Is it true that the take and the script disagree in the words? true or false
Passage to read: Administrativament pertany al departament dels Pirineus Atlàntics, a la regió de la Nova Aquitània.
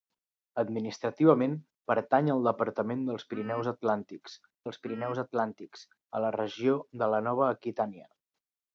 true